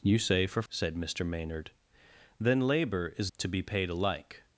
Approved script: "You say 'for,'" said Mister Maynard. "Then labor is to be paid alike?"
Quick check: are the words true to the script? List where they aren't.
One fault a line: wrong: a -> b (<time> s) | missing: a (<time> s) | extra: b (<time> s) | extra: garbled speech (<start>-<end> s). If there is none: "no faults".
no faults